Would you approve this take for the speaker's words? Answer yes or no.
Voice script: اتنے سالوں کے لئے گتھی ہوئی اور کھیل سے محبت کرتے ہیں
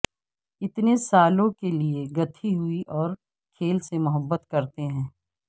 yes